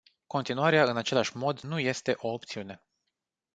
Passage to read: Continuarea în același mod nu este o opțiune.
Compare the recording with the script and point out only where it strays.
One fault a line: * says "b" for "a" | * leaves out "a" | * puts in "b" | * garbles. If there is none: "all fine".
all fine